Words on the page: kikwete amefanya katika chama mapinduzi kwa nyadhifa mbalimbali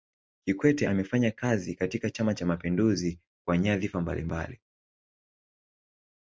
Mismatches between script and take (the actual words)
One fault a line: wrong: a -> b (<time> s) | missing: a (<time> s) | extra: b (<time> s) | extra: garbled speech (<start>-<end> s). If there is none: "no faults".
extra: kazi (1.3 s)
extra: cha (2.3 s)